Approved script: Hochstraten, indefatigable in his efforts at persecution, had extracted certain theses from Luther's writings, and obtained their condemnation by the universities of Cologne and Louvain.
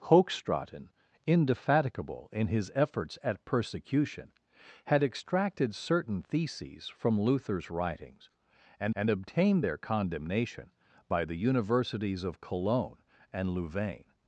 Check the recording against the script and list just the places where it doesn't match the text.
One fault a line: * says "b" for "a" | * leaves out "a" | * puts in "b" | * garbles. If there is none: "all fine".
* puts in "and"